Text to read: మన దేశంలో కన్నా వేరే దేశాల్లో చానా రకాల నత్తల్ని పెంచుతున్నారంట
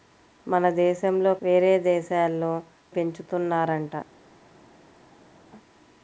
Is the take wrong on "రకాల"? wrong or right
wrong